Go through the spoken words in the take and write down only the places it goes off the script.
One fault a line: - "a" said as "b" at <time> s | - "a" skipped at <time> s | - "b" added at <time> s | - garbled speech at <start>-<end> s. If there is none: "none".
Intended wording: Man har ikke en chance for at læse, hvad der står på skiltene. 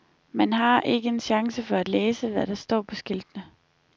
none